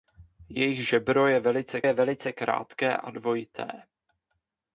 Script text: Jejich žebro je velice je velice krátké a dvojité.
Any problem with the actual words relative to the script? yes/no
no